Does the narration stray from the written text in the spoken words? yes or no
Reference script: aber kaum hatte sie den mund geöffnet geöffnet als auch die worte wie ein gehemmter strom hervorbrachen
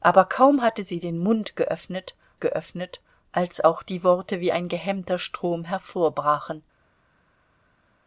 no